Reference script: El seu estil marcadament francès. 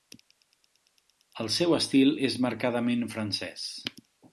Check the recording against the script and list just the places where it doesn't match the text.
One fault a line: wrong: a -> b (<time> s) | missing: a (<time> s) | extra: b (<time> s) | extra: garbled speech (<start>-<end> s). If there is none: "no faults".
extra: és (2.3 s)